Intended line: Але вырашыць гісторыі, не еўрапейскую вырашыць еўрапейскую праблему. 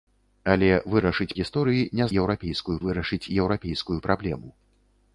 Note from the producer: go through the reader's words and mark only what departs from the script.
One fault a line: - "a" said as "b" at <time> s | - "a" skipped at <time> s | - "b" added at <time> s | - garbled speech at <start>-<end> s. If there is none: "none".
none